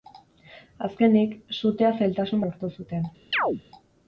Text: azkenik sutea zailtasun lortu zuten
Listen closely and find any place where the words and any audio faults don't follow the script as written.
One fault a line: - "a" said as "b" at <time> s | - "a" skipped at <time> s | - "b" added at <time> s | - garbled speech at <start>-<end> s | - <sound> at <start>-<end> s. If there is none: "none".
- chirp at 3.3-3.6 s